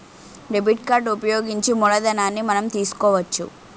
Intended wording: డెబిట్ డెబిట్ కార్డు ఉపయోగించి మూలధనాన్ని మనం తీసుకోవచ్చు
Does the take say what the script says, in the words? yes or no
no